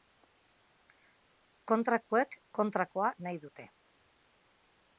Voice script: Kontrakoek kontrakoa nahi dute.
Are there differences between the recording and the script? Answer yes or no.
no